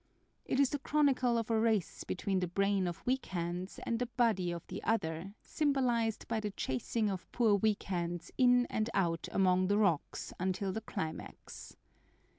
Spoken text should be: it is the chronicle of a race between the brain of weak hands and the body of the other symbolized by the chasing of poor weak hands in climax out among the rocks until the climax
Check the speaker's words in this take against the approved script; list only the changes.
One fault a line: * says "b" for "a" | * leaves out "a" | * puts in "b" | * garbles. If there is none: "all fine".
* says "and" for "climax"